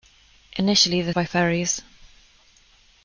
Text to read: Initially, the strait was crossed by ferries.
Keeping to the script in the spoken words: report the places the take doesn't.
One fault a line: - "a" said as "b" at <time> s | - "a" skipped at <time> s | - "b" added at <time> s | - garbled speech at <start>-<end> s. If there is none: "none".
- "strait was crossed" skipped at 1.1 s